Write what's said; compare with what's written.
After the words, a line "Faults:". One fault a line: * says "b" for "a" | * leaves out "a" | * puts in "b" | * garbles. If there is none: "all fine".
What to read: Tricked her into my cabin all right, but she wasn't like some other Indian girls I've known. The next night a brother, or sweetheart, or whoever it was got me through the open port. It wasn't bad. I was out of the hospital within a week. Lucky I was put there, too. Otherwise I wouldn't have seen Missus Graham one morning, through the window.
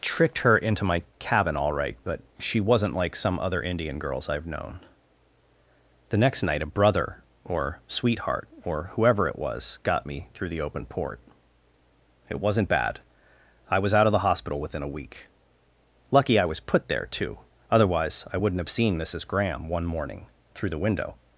Tricked her into my cabin all right, but she wasn't like some other Indian girls I've known. The next night a brother, or sweetheart, or whoever it was got me through the open port. It wasn't bad. I was out of the hospital within a week. Lucky I was put there, too. Otherwise I wouldn't have seen Missus Graham one morning, through the window.
Faults:
all fine